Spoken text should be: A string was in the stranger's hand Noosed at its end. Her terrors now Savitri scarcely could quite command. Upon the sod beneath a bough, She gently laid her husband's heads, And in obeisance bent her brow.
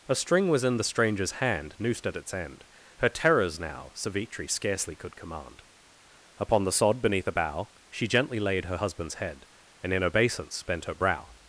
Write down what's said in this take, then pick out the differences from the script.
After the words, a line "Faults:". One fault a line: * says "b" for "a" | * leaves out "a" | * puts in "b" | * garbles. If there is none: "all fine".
A string was in the stranger's hand Noosed at its end. Her terrors now Savitri scarcely could command. Upon the sod beneath a bough, She gently laid her husband's head, And in obeisance bent her brow.
Faults:
* leaves out "quite"
* says "head" for "heads"